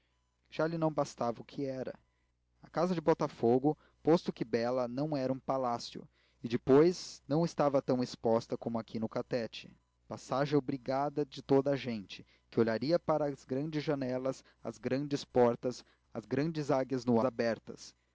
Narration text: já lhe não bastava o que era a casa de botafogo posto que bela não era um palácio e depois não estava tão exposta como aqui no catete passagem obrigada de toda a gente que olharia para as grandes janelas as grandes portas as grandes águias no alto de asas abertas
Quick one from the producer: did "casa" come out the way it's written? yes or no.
yes